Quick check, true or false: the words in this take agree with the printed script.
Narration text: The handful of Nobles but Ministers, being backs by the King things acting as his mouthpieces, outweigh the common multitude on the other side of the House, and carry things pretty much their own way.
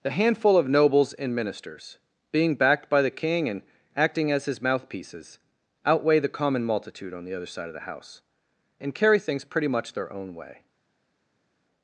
false